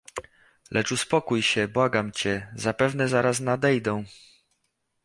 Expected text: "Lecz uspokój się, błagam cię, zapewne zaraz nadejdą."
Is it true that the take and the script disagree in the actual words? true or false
false